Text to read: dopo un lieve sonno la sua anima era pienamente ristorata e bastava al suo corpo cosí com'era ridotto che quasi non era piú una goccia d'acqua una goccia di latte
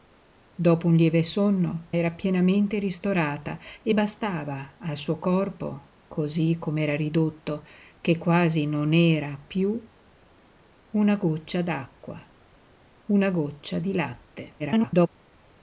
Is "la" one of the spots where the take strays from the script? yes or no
yes